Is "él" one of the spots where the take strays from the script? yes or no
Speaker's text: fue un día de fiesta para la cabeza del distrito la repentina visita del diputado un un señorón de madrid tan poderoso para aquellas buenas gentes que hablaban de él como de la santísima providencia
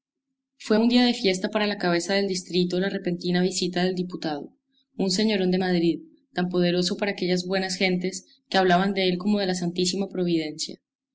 no